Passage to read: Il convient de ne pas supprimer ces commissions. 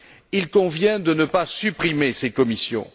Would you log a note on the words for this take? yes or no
no